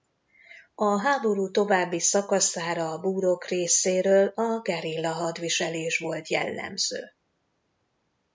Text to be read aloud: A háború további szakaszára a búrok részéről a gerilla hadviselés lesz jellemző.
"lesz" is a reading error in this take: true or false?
true